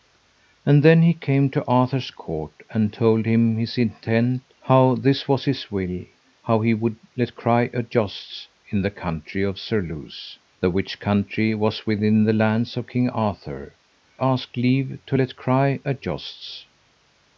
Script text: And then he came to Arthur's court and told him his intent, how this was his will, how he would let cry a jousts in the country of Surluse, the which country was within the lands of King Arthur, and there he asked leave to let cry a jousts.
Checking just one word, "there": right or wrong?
wrong